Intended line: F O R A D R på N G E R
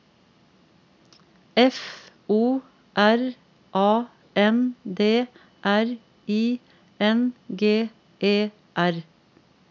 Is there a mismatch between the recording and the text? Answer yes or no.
yes